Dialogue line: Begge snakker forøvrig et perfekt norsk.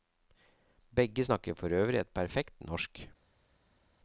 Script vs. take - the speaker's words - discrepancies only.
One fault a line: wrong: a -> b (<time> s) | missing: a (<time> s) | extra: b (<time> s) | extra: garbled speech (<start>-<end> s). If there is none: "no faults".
no faults